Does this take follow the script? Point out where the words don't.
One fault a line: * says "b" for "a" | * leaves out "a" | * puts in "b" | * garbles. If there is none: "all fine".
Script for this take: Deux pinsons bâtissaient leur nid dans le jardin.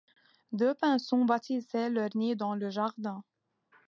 all fine